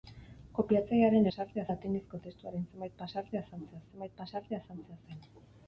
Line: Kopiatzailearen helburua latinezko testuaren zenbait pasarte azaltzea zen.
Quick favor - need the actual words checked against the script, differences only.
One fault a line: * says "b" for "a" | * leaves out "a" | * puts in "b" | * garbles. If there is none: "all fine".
* says "pasarte" for "helburua"
* puts in "zenbait pasarte azaltzea"